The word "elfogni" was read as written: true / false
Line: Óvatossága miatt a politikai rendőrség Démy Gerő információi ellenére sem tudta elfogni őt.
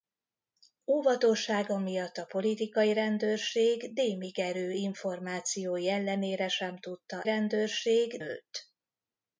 false